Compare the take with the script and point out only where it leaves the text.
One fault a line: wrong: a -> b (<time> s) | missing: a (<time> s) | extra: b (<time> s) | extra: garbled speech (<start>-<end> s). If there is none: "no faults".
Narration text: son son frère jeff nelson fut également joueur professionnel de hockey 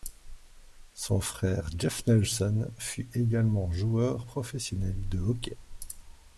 missing: son (1.2 s)